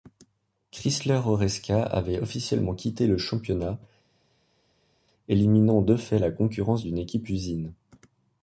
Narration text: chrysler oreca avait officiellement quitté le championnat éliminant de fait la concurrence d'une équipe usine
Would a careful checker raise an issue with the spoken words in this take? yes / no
no